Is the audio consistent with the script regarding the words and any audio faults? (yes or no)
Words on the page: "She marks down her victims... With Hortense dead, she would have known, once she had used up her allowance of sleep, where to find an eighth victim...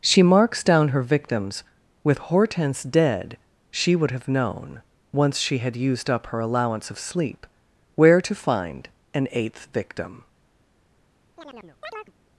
no